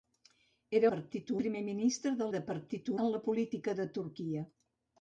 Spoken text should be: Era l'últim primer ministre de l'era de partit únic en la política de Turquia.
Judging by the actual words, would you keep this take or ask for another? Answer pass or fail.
fail